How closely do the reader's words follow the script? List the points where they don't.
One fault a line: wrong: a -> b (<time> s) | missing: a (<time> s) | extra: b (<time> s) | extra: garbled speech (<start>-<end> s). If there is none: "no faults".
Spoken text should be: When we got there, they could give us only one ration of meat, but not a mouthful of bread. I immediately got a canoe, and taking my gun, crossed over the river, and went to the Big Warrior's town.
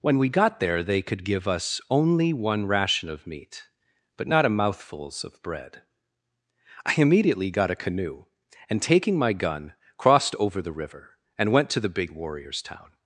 wrong: mouthful -> mouthfuls (4.5 s)